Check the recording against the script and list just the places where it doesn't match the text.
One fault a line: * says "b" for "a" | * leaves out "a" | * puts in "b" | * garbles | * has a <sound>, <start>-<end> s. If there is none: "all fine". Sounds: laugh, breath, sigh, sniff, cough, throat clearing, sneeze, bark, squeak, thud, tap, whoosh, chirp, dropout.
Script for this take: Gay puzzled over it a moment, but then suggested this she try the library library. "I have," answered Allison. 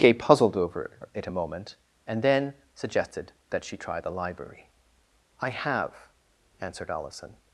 * says "and" for "but"
* says "that" for "this"
* leaves out "library"